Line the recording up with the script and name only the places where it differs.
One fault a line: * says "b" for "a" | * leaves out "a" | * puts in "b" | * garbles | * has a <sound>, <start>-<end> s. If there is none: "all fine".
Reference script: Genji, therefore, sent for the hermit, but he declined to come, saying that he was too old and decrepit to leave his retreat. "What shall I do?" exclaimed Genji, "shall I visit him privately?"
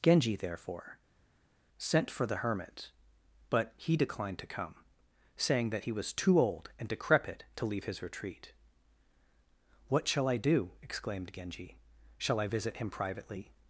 all fine